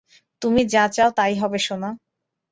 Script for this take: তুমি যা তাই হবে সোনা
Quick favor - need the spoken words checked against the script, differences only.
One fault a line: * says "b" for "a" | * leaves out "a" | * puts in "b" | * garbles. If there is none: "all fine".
* puts in "চাও"